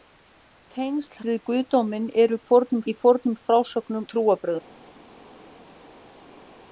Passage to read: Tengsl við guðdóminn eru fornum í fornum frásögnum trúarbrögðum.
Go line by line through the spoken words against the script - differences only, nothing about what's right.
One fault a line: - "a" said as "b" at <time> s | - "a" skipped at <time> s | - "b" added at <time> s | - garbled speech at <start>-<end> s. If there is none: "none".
none